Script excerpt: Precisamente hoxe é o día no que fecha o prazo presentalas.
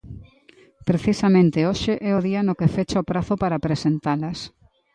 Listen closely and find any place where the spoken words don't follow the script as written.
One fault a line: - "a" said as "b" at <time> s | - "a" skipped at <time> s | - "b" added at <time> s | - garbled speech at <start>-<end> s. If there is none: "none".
- "para" added at 3.4 s